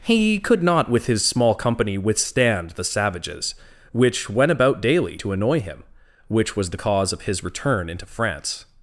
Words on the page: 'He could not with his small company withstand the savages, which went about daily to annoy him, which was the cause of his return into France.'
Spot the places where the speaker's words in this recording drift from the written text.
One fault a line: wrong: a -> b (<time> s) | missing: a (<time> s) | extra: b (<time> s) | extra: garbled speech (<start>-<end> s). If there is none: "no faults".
no faults